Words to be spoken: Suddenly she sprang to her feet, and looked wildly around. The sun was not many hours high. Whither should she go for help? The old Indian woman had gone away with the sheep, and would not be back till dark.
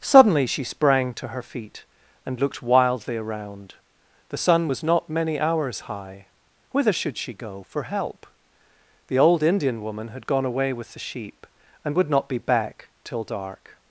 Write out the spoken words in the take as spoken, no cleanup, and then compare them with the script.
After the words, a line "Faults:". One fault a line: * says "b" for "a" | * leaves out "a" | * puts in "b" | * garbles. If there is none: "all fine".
Suddenly she sprang to her feet, and looked wildly around. The sun was not many hours high. Whither should she go for help? The old Indian woman had gone away with the sheep, and would not be back till dark.
Faults:
all fine